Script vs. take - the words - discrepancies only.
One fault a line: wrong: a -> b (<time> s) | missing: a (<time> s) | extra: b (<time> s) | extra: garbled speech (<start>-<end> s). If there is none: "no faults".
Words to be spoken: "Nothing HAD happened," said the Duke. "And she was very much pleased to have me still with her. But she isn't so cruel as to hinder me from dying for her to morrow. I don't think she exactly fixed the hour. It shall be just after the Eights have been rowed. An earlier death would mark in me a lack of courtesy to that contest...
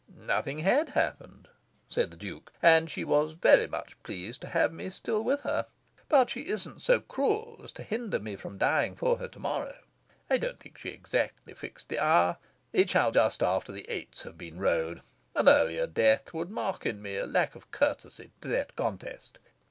missing: be (13.1 s)